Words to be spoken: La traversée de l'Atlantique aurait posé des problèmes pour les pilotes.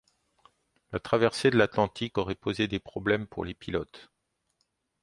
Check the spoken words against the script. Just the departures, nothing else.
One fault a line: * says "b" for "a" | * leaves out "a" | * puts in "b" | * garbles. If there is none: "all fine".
all fine